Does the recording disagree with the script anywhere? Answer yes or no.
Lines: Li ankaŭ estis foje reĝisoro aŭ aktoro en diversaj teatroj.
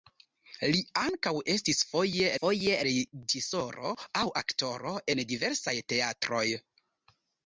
yes